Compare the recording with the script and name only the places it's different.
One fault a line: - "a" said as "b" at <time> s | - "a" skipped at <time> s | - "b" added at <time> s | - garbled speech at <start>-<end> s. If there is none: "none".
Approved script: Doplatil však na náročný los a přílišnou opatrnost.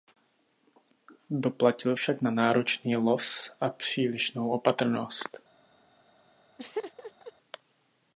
none